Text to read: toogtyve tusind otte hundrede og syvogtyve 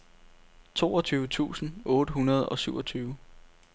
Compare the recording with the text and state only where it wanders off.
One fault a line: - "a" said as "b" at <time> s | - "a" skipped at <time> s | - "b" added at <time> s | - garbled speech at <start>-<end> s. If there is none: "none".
none